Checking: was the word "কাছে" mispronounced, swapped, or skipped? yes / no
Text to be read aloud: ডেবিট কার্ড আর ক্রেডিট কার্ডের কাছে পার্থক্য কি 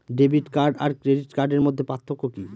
yes